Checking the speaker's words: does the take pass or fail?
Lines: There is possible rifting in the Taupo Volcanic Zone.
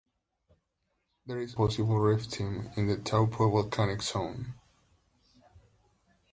pass